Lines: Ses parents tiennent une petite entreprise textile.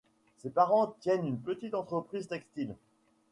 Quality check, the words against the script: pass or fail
pass